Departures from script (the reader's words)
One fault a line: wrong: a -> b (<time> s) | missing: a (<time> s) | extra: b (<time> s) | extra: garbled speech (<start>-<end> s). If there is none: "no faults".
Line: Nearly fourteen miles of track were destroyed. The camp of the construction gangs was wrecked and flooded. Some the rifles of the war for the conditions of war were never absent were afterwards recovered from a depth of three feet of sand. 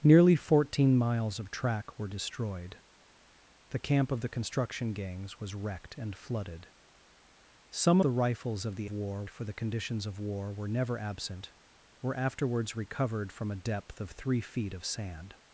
no faults